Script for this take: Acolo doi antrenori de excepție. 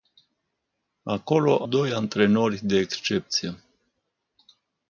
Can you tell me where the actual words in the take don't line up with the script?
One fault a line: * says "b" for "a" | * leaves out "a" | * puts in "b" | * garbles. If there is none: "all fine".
all fine